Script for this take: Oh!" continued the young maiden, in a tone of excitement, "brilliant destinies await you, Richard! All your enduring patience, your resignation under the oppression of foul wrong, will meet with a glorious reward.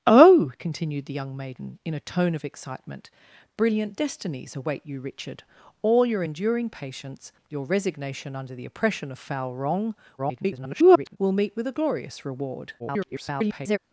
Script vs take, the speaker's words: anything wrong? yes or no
yes